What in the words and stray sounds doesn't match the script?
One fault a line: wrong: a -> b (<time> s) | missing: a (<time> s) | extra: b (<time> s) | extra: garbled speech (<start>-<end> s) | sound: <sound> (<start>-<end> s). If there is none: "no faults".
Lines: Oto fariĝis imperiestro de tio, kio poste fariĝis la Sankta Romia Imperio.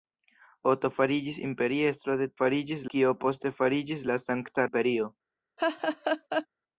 wrong: tio -> fariĝis (2.4 s)
missing: Romia (4.7 s)
sound: laugh (5.6-6.5 s)